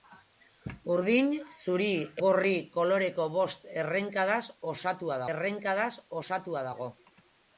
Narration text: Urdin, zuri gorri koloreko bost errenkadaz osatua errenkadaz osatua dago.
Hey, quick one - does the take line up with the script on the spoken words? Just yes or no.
yes